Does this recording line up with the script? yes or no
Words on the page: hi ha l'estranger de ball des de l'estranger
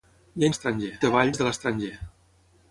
yes